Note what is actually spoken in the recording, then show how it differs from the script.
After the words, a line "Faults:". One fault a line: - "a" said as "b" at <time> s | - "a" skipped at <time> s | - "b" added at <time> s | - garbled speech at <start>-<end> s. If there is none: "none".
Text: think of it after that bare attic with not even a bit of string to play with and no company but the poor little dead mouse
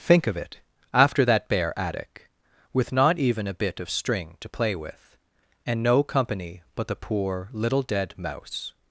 think of it after that bare attic with not even a bit of string to play with and no company but the poor little dead mouse
Faults:
none